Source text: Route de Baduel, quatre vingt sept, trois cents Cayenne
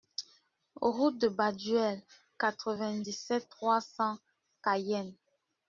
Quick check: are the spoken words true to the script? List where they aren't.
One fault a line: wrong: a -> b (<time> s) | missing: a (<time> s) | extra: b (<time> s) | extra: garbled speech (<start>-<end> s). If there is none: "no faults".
extra: dix (3.0 s)